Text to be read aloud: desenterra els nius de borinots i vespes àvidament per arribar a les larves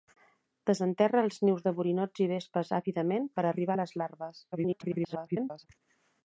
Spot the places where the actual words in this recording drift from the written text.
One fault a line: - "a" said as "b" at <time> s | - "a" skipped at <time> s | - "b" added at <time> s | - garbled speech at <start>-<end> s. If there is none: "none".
- garbled speech at 4.5-5.7 s